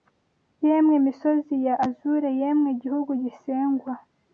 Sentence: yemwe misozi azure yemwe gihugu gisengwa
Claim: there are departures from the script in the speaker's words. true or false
true